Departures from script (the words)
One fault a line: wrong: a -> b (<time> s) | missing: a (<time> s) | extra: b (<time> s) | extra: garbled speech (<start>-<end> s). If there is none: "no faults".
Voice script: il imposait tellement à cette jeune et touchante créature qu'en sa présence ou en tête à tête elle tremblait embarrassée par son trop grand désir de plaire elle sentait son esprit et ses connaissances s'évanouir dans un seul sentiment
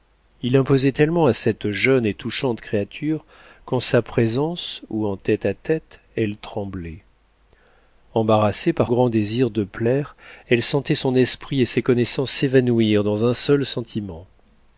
missing: son trop (8.9 s)